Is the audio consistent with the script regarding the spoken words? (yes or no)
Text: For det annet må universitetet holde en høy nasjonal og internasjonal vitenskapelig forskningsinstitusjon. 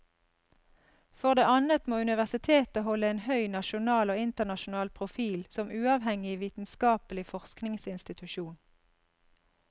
no